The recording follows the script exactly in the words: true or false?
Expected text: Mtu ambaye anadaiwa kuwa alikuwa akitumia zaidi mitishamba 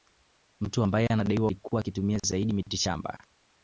false